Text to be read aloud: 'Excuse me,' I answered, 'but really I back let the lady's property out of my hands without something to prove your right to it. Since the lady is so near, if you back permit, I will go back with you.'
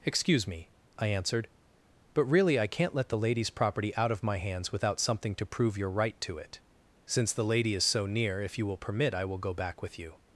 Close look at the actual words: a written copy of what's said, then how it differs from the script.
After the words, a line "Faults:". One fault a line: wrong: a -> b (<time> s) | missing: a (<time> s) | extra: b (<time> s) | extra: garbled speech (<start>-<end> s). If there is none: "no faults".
'Excuse me,' I answered, 'but really I can't let the lady's property out of my hands without something to prove your right to it. Since the lady is so near, if you will permit, I will go back with you.'
Faults:
wrong: back -> can't (2.6 s)
wrong: back -> will (8.7 s)